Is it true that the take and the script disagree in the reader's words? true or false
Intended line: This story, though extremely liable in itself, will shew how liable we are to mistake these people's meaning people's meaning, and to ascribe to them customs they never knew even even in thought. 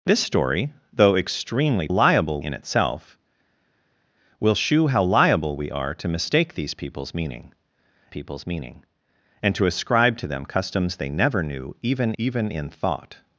false